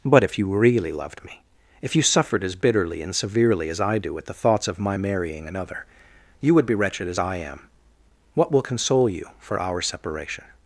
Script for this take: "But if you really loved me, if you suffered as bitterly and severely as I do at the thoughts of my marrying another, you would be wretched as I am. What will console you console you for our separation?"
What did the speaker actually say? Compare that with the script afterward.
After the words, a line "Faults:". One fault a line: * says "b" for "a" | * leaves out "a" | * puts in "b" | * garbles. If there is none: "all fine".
"But if you really loved me, if you suffered as bitterly and severely as I do at the thoughts of my marrying another, you would be wretched as I am. What will console you for our separation?"
Faults:
* leaves out "console you"